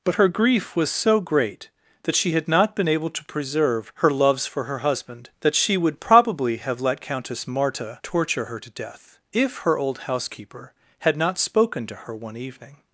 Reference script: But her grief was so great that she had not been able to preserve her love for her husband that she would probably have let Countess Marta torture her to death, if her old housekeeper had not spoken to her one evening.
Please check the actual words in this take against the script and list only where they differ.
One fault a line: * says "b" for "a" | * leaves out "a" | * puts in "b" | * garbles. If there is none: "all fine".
* says "loves" for "love"